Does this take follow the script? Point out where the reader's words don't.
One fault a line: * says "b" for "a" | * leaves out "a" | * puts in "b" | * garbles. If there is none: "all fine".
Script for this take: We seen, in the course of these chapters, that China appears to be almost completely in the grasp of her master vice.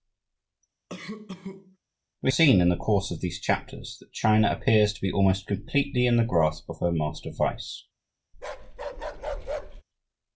all fine